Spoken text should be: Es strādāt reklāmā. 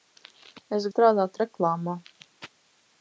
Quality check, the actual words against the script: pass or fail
pass